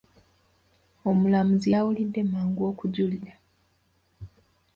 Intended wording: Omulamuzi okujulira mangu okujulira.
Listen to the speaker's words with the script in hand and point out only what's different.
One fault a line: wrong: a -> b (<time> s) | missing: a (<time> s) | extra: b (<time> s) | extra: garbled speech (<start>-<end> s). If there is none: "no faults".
wrong: okujulira -> yawulidde (1.7 s)